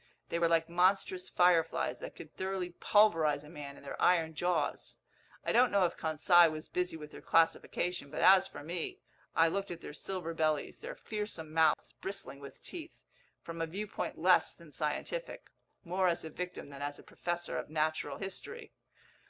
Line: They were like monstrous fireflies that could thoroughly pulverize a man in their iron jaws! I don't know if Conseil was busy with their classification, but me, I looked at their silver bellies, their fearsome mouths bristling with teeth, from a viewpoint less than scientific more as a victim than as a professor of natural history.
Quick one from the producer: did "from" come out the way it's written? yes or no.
yes